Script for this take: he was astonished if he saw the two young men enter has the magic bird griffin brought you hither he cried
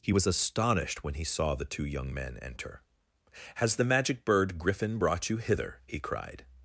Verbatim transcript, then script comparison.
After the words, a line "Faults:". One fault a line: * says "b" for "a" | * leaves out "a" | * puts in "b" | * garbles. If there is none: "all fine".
he was astonished when he saw the two young men enter has the magic bird griffin brought you hither he cried
Faults:
* says "when" for "if"